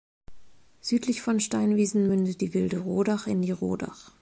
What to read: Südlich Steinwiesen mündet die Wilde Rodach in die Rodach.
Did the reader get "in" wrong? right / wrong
right